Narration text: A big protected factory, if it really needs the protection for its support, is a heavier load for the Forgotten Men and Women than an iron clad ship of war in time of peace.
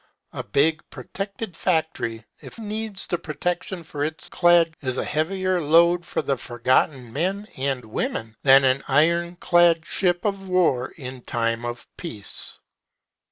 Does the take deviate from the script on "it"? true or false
true